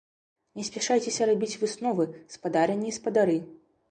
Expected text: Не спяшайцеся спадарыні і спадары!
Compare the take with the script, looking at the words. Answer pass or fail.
fail